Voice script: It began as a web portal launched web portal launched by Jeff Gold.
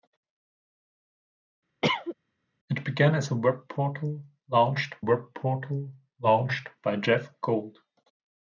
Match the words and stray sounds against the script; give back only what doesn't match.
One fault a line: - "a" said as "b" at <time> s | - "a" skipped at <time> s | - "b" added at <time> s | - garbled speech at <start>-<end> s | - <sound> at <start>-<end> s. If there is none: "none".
- cough at 1.8-2.1 s